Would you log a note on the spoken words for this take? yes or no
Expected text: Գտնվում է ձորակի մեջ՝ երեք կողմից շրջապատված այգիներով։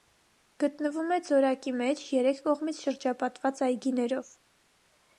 no